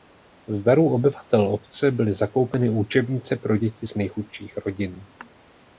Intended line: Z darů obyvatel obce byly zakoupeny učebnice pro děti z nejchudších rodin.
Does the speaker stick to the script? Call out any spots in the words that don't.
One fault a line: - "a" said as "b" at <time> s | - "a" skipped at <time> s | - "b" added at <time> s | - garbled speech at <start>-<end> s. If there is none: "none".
none